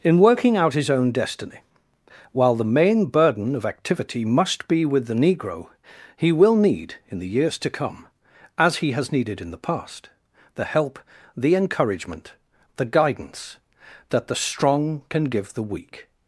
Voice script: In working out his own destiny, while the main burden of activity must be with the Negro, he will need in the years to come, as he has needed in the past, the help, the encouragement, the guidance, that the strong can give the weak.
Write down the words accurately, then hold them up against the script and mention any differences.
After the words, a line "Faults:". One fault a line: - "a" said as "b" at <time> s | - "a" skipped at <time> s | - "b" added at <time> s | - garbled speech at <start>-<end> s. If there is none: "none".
In working out his own destiny, while the main burden of activity must be with the Negro, he will need in the years to come, as he has needed in the past, the help, the encouragement, the guidance, that the strong can give the weak.
Faults:
none